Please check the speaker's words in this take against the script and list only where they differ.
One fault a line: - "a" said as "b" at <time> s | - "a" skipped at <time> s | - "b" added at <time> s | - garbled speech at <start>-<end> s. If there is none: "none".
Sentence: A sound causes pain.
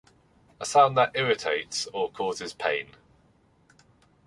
- "that irritates or" added at 1.0 s